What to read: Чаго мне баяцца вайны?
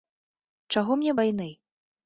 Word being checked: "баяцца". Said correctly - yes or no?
no